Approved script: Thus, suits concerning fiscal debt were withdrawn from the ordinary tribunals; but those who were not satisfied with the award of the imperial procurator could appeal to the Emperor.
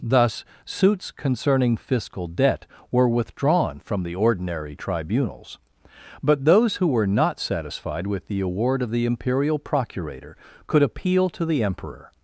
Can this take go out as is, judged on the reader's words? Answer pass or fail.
pass